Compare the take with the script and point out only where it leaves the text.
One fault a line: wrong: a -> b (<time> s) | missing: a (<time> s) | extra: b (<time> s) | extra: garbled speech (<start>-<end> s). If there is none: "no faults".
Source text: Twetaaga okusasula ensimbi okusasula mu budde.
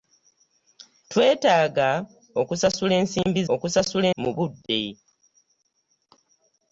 no faults